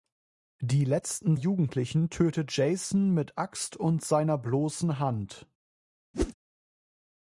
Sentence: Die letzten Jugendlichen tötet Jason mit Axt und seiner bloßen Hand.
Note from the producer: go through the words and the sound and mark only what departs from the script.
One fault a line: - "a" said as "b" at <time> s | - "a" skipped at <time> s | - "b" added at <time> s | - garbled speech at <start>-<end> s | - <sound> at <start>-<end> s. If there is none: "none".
- whoosh at 6.1-6.3 s